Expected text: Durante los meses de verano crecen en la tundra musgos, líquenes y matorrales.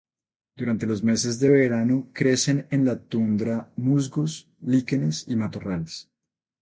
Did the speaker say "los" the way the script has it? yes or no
yes